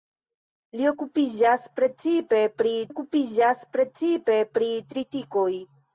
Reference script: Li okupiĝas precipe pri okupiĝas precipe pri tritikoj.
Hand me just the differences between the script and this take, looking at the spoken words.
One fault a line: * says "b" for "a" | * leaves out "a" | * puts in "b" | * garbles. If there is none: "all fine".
all fine